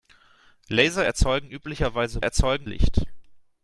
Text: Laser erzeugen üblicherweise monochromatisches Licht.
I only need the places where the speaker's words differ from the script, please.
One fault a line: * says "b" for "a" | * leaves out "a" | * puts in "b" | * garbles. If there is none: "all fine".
* says "erzeugen" for "monochromatisches"